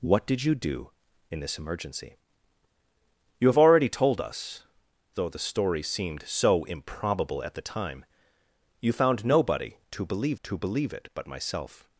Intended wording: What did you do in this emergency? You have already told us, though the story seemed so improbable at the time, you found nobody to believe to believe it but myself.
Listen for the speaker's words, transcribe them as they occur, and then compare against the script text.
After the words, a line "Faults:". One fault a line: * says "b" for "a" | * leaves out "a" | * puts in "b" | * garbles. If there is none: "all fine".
What did you do in this emergency? You have already told us, though the story seemed so improbable at the time, you found nobody to believe to believe it but myself.
Faults:
all fine